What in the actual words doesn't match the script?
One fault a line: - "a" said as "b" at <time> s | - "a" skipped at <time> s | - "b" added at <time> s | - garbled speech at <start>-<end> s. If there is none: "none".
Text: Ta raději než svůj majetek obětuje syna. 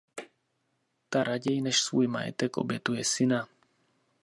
none